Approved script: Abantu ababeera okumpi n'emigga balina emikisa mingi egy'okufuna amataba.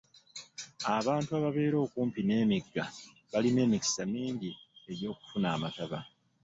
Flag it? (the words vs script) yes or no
no